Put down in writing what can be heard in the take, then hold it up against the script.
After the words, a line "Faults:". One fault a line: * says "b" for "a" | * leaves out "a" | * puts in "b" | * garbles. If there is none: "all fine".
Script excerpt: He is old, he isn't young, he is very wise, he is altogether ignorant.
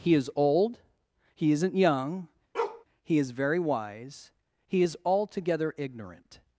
He is old, he isn't young, he is very wise, he is altogether ignorant.
Faults:
all fine